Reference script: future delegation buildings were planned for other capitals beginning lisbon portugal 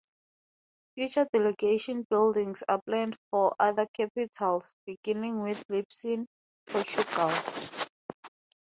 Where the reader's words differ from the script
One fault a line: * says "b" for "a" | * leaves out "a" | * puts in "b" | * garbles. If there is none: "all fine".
* says "are" for "were"
* puts in "with"